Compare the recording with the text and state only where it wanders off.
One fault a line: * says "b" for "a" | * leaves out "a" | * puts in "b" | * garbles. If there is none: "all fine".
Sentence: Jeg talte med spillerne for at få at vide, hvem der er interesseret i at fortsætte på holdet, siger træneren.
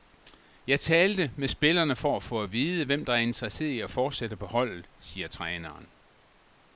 all fine